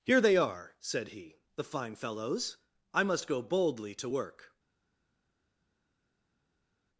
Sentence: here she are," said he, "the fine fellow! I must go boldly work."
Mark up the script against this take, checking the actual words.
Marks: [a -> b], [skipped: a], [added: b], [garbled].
here [she -> they] are," said he, "the fine [fellow! -> fellows] I must go boldly [added: to] work."